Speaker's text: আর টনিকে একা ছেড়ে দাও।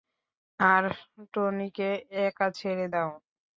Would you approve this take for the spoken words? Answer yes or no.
yes